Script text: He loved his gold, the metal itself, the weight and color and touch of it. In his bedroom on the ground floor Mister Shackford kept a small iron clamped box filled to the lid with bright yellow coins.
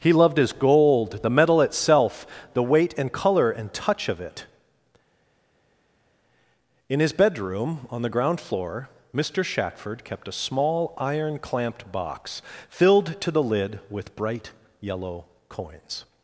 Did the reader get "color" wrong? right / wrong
right